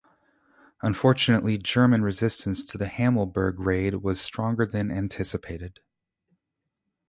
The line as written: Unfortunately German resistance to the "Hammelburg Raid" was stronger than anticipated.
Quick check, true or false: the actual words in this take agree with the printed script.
true